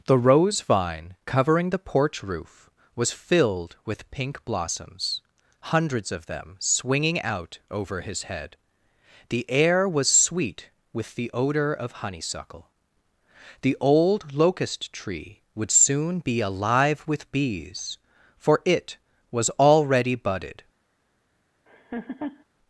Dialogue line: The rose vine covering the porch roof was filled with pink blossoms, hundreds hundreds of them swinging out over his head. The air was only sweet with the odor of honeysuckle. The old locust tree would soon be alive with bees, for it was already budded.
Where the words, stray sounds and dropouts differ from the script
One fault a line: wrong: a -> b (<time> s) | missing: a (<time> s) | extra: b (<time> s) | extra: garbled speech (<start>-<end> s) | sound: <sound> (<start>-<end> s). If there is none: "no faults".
missing: hundreds (6.1 s)
missing: only (10.1 s)
sound: laugh (21.7-22.4 s)